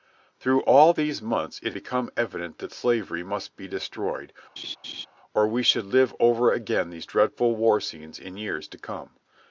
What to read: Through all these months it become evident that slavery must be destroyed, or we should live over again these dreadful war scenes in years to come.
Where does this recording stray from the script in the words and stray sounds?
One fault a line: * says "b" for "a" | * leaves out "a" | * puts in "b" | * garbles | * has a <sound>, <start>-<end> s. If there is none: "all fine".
* has a laugh, 4.6-5.1 s